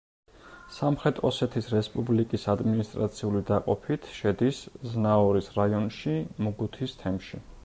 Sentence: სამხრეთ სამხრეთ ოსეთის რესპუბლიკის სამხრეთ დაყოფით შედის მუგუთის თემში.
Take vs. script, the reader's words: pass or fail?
fail